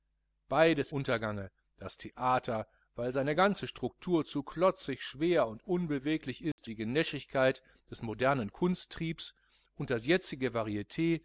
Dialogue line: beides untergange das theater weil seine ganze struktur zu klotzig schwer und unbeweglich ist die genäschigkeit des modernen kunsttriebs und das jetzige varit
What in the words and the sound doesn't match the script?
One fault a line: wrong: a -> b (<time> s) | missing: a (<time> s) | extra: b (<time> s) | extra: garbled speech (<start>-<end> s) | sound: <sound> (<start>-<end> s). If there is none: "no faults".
sound: dropout (6.5-6.6 s)